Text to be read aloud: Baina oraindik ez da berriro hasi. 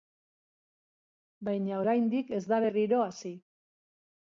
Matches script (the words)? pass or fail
pass